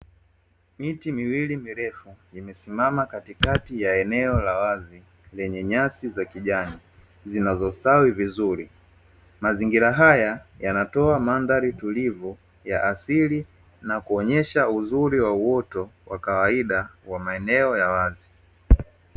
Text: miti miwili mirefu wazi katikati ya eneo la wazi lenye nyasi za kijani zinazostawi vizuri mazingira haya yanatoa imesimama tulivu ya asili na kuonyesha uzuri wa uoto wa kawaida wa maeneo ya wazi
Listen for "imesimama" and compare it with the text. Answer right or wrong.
wrong